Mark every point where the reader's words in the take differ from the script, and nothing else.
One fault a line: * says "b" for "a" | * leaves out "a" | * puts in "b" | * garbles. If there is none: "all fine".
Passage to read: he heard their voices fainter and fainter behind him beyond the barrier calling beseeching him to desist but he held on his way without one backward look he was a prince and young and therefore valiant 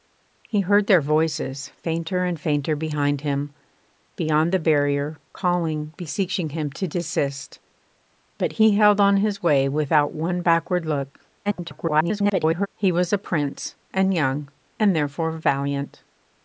* garbles